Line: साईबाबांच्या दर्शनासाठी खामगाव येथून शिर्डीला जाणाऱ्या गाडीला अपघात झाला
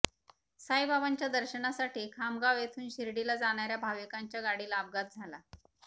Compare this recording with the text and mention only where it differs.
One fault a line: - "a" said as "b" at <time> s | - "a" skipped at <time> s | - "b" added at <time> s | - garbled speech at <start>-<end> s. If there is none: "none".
- "भाविकांच्या" added at 3.8 s